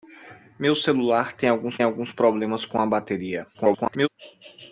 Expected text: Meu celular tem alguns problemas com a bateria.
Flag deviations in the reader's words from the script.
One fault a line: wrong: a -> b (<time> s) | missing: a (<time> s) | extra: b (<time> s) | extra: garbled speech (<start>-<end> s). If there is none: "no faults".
extra: alguns (1.8 s)
extra: garbled speech (3.5-4.1 s)